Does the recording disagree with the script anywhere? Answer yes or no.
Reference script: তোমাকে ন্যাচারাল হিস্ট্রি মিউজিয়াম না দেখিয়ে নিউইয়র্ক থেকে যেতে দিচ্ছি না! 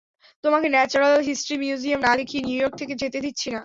no